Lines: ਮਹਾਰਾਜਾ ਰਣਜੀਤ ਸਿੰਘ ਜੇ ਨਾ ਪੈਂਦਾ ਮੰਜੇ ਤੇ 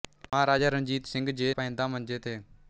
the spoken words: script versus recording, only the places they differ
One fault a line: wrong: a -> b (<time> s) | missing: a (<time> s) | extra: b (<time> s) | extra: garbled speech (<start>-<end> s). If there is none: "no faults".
missing: ਨਾ (1.5 s)